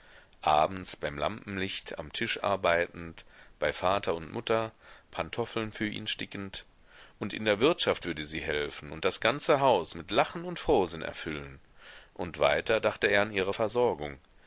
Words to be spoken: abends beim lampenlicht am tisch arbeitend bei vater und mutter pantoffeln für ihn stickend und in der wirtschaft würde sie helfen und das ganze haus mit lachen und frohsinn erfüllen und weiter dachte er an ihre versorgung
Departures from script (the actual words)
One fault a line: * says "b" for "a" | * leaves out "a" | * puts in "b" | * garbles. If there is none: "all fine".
all fine